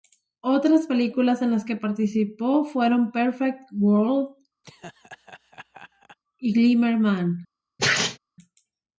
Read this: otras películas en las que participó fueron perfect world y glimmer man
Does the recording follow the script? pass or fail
pass